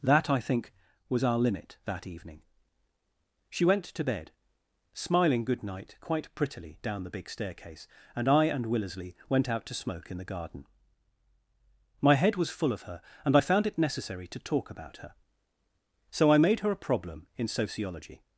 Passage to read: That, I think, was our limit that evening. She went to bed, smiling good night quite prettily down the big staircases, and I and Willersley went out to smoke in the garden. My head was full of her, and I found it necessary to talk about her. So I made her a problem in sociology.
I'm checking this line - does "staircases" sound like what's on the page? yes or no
no